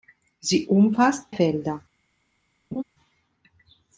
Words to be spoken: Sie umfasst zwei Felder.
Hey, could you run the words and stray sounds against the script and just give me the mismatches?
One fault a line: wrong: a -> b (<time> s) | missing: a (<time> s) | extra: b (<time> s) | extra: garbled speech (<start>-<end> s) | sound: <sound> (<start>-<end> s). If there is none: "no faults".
missing: zwei (1.4 s)
sound: laugh (2.7-2.8 s)